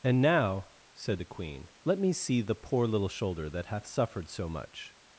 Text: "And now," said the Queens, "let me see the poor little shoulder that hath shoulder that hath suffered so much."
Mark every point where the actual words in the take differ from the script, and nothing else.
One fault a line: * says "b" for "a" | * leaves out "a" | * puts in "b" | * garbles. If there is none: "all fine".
* says "Queen" for "Queens"
* leaves out "shoulder that hath"